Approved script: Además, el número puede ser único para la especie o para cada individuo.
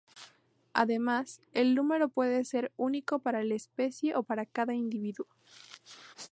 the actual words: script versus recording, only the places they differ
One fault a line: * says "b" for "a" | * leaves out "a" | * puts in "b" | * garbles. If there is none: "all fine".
all fine